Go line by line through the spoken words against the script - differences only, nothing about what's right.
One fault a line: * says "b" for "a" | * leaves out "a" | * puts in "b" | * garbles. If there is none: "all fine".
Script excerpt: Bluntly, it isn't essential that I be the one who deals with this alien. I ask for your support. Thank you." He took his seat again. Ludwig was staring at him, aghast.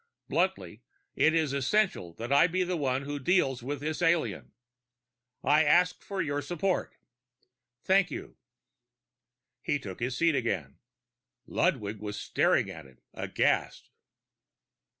* says "is" for "isn't"